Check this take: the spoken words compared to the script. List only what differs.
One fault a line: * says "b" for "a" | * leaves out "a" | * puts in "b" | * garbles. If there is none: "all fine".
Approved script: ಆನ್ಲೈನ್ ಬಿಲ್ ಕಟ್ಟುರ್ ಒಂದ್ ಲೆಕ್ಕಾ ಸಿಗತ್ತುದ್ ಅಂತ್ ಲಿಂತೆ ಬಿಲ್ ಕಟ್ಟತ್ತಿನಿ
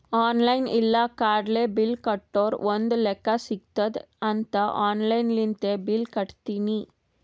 * puts in "ಇಲ್ಲ ಕಾರ್ಡ್ಲೆ"
* puts in "ಆನ್ಲೈನ್"